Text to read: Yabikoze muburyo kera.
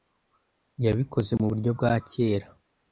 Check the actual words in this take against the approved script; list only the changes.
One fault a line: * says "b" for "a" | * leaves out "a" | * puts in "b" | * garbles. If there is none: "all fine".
* puts in "bwa"